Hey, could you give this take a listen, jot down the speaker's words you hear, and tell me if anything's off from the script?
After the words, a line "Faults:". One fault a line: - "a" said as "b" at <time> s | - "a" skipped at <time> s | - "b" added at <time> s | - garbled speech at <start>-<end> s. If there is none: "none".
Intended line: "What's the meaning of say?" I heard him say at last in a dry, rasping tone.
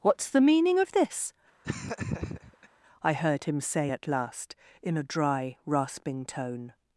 "What's the meaning of this?" I heard him say at last in a dry, rasping tone.
Faults:
- "say" said as "this" at 0.9 s